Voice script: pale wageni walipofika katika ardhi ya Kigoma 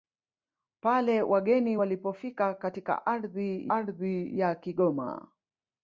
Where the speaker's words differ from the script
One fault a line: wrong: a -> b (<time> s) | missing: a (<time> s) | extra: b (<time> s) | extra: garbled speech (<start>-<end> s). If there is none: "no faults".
extra: ardhi (3.7 s)